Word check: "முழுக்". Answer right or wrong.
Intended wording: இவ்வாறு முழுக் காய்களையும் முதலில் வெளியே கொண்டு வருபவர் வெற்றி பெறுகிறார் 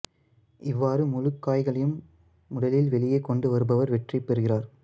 right